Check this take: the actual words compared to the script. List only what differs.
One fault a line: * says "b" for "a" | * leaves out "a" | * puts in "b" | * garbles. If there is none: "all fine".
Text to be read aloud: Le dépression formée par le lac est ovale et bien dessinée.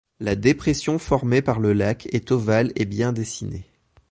* says "La" for "Le"